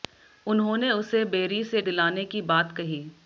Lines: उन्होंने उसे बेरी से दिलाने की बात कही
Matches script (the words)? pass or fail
pass